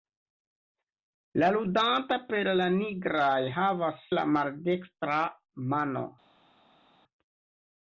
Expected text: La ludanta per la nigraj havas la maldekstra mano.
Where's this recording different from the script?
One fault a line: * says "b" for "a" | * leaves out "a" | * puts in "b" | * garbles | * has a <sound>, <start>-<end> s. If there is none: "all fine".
all fine